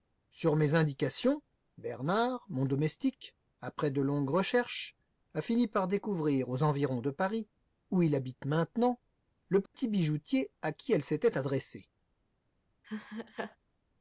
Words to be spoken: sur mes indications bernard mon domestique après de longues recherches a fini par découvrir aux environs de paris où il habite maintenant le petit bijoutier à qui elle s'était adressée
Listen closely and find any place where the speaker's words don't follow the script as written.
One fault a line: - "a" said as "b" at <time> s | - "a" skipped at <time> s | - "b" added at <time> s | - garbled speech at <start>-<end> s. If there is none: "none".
none